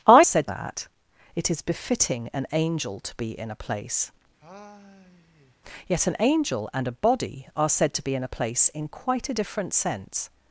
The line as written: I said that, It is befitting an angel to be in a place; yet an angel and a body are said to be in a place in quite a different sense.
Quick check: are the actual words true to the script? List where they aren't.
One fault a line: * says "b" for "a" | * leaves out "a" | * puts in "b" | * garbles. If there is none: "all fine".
all fine